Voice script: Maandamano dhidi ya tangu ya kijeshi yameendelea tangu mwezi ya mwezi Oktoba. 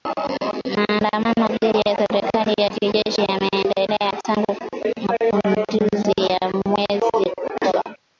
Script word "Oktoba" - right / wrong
right